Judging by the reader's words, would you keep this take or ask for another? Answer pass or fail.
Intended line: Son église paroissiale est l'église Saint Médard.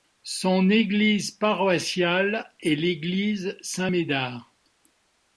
pass